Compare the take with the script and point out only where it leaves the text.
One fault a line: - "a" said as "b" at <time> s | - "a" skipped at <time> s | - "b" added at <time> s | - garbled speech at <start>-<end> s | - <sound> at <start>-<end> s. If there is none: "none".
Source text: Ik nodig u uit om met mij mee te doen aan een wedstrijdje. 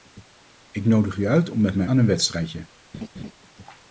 - "mee te doen" skipped at 1.9 s
- laugh at 2.9-3.3 s